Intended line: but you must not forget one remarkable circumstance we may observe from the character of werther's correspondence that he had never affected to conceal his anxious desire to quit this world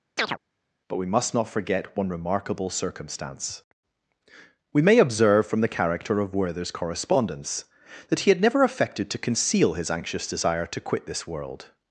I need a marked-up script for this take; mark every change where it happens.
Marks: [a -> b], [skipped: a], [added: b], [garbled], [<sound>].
[chirp] but [you -> we] must not forget one remarkable circumstance we may observe from the character of werther's correspondence that he had never affected to conceal his anxious desire to quit this world